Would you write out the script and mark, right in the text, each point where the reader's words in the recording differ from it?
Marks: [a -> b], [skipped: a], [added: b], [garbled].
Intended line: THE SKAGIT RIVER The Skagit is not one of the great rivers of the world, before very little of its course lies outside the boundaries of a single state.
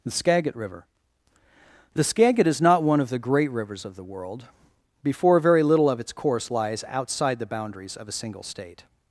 THE SKAGIT RIVER The Skagit is not one of the great rivers of the world, before very little of its course lies outside the boundaries of a single state.